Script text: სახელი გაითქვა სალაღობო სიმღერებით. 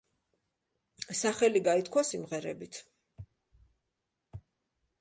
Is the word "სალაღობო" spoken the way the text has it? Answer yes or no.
no